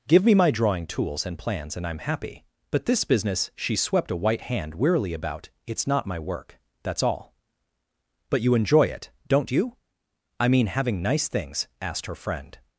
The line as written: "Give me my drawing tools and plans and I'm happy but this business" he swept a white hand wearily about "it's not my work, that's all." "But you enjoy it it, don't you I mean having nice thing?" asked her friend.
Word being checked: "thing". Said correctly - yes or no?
no